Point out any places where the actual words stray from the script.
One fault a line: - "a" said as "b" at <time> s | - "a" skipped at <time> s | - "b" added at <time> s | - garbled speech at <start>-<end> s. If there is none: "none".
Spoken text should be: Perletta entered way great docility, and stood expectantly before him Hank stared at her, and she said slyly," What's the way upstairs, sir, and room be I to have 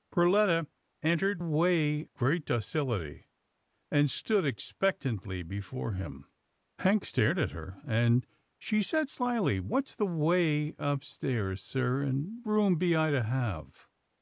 none